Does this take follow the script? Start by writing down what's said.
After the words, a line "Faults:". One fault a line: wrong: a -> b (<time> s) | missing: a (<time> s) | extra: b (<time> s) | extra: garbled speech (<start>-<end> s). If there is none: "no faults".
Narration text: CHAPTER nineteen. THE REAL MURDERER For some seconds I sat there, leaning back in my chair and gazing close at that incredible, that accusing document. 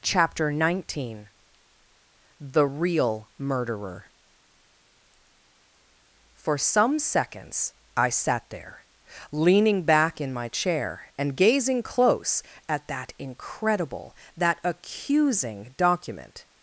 CHAPTER nineteen. THE REAL MURDERER For some seconds I sat there, leaning back in my chair and gazing close at that incredible, that accusing document.
Faults:
no faults